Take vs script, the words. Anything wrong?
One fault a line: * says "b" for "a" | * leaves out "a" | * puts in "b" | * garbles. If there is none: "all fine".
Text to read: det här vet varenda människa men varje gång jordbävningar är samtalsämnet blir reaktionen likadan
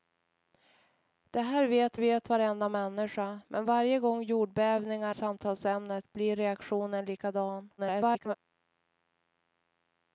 * puts in "vet"
* leaves out "är"
* garbles